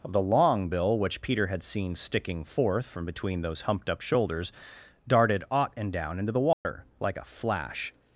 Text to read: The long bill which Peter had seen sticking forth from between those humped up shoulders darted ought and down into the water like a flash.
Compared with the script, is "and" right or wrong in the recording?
right